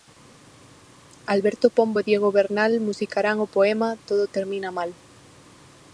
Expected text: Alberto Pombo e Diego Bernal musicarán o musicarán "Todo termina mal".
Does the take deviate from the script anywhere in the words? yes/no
yes